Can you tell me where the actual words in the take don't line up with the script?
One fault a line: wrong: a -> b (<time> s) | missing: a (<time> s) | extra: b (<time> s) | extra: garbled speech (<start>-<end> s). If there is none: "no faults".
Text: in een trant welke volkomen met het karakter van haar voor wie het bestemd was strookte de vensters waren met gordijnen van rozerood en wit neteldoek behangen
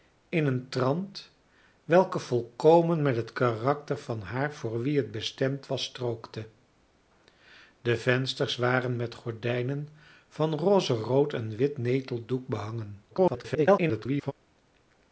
extra: garbled speech (13.1-14.3 s)